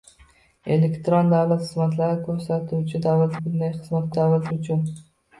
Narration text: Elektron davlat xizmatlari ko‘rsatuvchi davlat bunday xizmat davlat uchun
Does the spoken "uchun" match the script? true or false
true